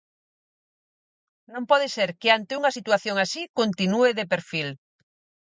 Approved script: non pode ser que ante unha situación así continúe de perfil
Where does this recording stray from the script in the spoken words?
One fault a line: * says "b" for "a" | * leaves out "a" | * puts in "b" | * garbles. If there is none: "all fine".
all fine